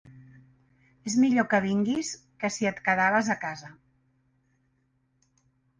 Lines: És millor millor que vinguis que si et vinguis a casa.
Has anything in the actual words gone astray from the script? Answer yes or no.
yes